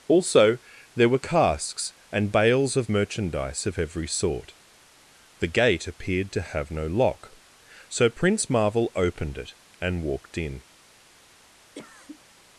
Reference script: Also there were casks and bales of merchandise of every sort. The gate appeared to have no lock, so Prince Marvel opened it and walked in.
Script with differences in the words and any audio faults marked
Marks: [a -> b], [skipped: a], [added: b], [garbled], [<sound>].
Also there were casks and bales of merchandise of every sort. The gate appeared to have no lock, so Prince Marvel opened it and walked in. [cough]